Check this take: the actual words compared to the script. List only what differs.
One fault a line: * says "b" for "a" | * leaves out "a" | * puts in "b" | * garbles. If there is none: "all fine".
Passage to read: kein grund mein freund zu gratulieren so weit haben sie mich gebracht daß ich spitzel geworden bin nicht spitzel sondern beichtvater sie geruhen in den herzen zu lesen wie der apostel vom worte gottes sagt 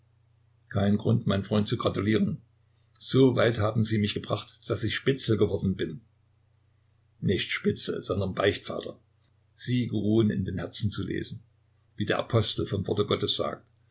all fine